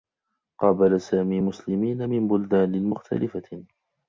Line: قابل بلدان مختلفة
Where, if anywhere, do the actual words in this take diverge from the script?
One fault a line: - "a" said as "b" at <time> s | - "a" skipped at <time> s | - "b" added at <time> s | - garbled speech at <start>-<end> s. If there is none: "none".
- "سامي مسلمين من" added at 1.0 s